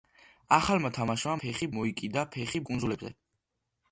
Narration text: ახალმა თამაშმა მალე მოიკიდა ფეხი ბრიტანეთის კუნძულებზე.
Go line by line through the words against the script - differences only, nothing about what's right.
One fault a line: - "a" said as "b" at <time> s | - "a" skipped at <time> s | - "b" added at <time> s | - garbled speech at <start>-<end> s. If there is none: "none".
- "მალე" said as "ფეხი" at 1.4 s
- "ბრიტანეთის" skipped at 2.6 s